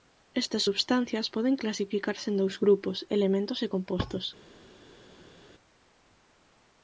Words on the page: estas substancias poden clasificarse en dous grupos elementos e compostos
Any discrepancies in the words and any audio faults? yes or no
no